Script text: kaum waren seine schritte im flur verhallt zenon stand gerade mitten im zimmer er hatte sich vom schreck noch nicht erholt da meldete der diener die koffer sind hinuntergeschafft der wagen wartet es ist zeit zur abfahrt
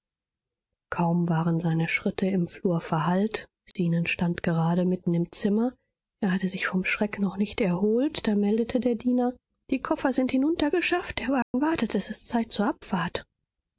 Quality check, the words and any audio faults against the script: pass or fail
fail